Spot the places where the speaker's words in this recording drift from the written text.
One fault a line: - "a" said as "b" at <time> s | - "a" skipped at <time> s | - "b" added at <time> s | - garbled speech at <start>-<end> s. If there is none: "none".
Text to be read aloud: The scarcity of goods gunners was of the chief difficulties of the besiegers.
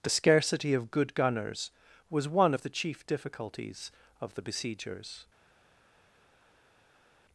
- "goods" said as "good" at 0.9 s
- "one" added at 2.3 s